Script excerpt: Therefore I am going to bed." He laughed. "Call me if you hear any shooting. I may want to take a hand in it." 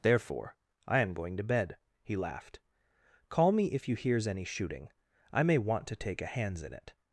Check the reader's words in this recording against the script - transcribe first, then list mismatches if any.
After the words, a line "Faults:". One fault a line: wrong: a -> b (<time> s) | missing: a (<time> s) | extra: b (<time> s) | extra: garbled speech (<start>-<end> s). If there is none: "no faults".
Therefore I am going to bed." He laughed. "Call me if you hears any shooting. I may want to take a hands in it."
Faults:
wrong: hear -> hears (3.9 s)
wrong: hand -> hands (6.3 s)